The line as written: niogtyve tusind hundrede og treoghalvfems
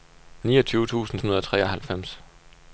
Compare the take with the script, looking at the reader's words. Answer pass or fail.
pass